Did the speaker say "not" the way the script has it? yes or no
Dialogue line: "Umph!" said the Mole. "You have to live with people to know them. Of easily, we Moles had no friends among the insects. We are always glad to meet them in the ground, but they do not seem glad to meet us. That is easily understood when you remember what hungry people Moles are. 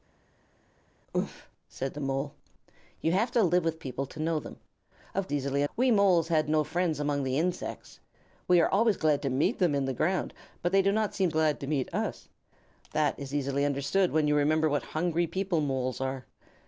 yes